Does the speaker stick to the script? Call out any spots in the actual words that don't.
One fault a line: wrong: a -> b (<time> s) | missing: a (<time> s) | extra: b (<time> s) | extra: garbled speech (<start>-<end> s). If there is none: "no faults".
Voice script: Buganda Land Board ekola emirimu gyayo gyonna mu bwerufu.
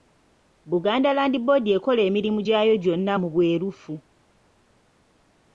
no faults